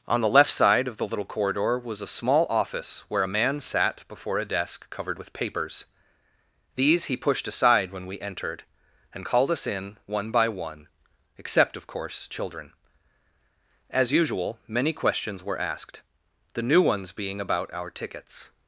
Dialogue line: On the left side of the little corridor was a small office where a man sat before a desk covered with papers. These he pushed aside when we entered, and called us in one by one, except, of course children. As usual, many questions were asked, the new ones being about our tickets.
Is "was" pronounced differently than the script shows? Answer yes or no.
no